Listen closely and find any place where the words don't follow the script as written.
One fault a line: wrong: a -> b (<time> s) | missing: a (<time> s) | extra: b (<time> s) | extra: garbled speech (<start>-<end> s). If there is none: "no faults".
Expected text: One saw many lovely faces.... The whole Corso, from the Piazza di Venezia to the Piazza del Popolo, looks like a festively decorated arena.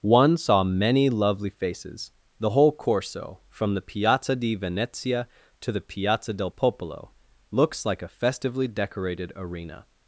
no faults